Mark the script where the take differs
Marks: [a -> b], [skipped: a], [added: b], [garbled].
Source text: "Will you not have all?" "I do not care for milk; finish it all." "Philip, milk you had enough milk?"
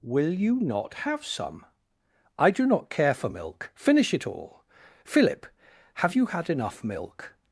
"Will you not have [all?" -> some] "I do not care for milk; finish it all." "Philip, [milk -> have] you had enough milk?"